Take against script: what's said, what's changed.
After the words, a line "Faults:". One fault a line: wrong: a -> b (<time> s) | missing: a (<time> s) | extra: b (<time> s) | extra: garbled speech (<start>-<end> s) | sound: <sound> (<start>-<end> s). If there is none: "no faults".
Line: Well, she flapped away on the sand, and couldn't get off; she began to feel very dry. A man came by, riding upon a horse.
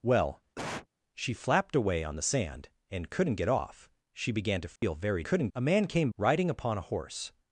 Well, she flapped away on the sand, and couldn't get off; she began to feel very couldn't. A man came riding upon a horse.
Faults:
sound: cough (0.5-0.9 s)
sound: dropout (4.8-4.8 s)
wrong: dry -> couldn't (5.2 s)
missing: by (6.1 s)